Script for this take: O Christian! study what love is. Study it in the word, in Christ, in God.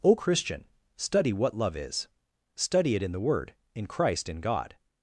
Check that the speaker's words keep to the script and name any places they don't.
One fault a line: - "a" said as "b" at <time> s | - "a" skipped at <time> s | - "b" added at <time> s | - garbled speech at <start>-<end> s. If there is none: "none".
none